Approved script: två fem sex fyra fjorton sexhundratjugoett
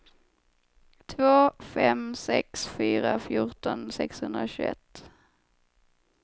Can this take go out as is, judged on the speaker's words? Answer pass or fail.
pass